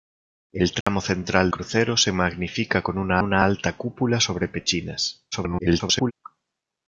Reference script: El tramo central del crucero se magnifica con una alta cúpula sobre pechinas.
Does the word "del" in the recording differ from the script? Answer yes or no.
yes